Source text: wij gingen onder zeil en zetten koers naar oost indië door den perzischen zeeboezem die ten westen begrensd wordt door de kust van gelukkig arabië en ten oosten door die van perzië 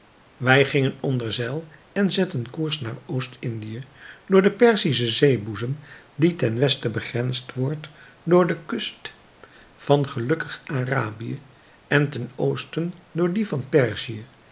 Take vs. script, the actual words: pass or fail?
pass